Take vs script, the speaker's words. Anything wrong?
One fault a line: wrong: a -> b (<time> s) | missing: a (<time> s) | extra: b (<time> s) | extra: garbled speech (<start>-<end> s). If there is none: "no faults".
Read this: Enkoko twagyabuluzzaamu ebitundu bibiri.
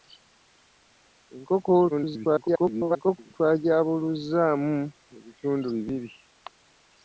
extra: garbled speech (1.9-3.3 s)